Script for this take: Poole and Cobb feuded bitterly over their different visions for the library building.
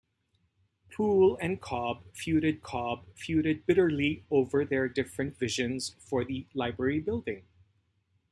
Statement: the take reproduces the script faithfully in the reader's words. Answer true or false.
false